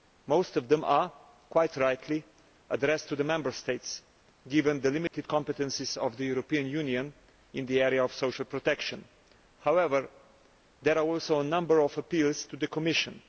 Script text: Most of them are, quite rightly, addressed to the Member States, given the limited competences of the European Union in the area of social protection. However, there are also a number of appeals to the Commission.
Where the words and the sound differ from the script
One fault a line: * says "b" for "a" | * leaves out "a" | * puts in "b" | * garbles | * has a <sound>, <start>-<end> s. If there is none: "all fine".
* has a dropout, 5.1-5.1 s